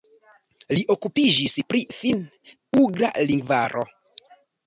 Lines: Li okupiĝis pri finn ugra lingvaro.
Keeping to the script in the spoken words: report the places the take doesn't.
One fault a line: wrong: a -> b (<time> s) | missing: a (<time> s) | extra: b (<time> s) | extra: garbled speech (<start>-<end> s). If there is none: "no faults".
no faults